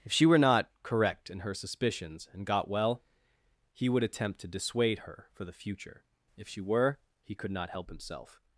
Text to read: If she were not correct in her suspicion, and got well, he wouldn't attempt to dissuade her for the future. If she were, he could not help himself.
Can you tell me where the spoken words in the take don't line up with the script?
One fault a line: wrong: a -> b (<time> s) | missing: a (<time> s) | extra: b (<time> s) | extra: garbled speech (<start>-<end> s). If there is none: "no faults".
wrong: suspicion -> suspicions (1.5 s)
wrong: wouldn't -> would (3.9 s)